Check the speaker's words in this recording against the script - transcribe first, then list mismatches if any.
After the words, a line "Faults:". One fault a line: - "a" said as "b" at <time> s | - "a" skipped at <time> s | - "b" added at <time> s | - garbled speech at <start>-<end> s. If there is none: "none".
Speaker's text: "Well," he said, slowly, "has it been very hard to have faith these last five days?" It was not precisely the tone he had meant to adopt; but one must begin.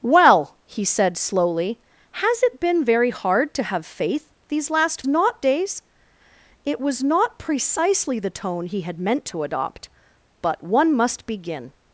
"Well," he said, slowly, "has it been very hard to have faith these last not days?" It was not precisely the tone he had meant to adopt; but one must begin.
Faults:
- "five" said as "not" at 5.1 s